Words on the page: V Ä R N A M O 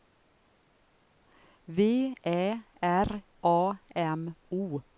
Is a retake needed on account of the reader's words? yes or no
yes